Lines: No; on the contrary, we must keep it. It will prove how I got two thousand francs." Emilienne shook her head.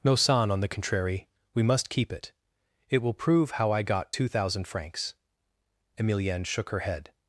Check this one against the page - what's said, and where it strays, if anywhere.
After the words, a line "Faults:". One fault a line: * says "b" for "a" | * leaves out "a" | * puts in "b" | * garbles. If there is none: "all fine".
No; son on the contrary, we must keep it. It will prove how I got two thousand francs." Emilienne shook her head.
Faults:
* puts in "son"